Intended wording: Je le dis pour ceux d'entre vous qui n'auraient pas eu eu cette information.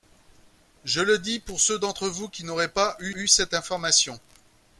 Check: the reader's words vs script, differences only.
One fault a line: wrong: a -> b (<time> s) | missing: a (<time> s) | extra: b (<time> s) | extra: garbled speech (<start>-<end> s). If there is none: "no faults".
no faults